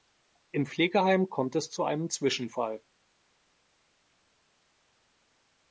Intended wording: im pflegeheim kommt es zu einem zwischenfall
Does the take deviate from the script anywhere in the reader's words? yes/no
no